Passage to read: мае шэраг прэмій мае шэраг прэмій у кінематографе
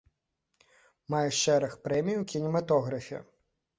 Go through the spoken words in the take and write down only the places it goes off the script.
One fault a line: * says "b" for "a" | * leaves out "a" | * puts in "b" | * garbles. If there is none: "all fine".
* leaves out "мае шэраг прэмій"